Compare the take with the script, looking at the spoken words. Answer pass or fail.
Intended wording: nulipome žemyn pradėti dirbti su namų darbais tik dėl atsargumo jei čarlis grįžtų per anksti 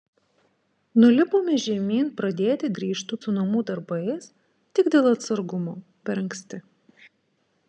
fail